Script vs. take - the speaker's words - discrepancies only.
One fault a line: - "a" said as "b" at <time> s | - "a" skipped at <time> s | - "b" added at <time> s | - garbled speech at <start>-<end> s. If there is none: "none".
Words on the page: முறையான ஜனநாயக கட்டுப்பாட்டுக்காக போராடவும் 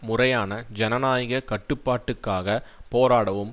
none